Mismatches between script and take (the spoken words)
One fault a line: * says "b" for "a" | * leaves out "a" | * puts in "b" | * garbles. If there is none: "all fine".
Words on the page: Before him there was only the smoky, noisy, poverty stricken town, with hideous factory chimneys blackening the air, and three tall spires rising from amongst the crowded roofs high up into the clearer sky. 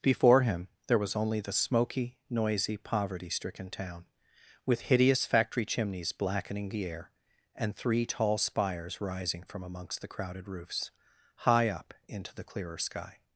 all fine